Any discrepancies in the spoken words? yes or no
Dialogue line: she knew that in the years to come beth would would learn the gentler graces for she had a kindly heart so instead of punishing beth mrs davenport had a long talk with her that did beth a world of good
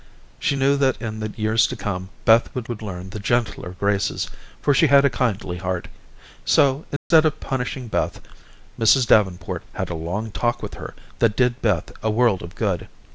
no